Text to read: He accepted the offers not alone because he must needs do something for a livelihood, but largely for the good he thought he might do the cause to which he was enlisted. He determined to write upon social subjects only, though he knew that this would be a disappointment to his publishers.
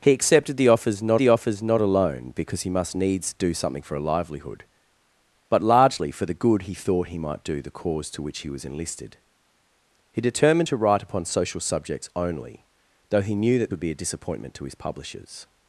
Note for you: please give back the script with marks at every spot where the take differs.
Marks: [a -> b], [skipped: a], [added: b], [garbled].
He accepted the offers not [added: the offers not] alone because he must needs do something for a livelihood, but largely for the good he thought he might do the cause to which he was enlisted. He determined to write upon social subjects only, though he knew that [skipped: this] would be a disappointment to his publishers.